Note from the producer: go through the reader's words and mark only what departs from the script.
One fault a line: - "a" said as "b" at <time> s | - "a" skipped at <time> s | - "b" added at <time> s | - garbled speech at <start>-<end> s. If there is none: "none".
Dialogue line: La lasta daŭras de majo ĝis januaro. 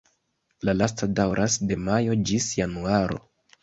none